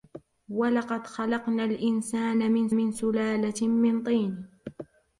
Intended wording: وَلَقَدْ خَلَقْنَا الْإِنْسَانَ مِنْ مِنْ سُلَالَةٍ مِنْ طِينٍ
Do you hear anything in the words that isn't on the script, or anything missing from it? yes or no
no